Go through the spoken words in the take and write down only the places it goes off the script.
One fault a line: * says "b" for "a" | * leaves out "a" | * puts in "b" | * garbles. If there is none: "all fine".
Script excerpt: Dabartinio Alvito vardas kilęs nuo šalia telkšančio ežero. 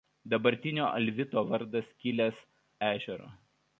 * leaves out "nuo šalia telkšančio"